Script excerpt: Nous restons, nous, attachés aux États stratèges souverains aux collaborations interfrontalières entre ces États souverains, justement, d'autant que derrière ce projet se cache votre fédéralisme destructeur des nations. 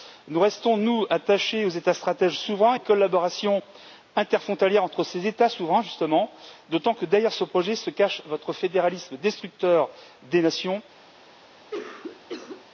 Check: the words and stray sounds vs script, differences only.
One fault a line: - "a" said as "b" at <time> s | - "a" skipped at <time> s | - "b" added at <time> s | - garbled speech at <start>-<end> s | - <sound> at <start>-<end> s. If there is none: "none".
- cough at 11.7-12.7 s